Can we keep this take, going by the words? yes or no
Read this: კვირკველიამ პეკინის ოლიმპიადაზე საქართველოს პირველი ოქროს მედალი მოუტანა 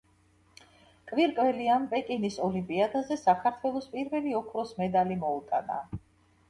yes